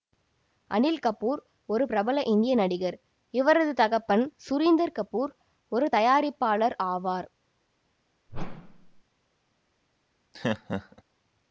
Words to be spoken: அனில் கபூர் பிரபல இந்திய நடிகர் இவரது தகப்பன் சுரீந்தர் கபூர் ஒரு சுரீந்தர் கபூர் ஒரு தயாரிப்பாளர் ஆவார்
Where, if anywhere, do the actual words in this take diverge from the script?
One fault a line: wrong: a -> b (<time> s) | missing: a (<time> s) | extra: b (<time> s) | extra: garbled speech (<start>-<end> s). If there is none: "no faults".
extra: ஒரு (1.7 s)
missing: சுரீந்தர் கபூர் ஒரு (5.9 s)